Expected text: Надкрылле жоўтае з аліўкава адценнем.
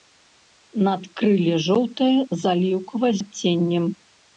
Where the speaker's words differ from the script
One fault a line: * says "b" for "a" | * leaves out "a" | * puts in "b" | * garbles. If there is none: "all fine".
all fine